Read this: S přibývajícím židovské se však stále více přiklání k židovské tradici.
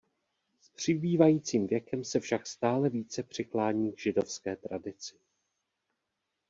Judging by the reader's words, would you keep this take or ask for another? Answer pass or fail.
fail